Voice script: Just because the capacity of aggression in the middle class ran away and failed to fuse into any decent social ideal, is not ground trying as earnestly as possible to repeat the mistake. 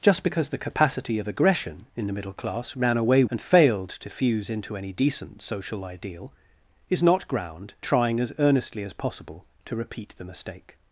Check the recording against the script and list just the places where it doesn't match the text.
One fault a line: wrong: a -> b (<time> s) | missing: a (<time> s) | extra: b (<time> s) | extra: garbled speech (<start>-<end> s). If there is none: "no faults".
no faults